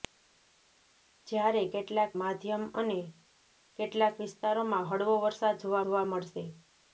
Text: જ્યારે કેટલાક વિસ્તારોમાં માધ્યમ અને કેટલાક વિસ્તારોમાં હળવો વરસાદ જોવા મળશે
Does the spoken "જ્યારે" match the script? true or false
true